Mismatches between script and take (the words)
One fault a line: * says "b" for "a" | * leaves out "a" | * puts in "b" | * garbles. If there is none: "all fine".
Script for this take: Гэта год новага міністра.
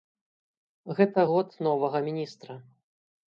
all fine